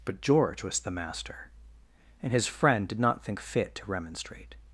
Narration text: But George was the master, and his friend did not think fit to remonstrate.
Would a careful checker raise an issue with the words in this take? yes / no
no